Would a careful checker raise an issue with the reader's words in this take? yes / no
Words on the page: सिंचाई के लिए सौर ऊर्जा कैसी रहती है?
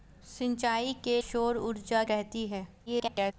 yes